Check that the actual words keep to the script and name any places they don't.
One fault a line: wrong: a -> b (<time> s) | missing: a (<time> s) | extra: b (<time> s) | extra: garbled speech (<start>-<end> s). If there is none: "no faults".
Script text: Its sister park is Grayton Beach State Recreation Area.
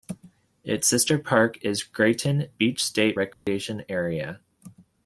no faults